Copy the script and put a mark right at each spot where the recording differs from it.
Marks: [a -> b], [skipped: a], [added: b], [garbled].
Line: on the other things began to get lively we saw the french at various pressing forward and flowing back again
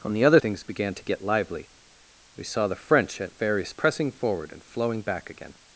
on the other things began to get lively we saw the french at various pressing forward and flowing back again